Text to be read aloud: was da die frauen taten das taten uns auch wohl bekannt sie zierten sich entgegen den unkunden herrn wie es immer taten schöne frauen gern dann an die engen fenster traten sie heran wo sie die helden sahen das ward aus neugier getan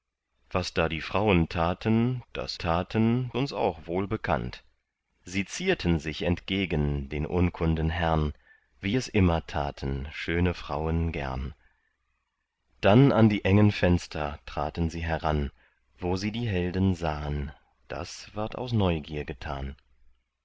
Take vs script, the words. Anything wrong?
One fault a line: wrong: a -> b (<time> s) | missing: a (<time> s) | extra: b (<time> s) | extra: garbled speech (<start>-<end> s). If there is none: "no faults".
no faults